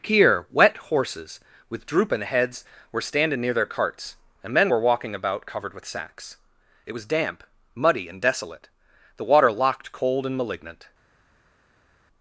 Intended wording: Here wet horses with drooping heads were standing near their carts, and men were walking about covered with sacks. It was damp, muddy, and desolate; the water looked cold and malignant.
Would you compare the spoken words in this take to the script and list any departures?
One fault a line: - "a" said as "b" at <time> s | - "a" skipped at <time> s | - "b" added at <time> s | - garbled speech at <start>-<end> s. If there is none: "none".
- "looked" said as "locked" at 9.5 s